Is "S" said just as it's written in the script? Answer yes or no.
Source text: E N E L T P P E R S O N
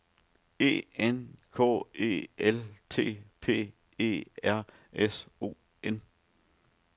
yes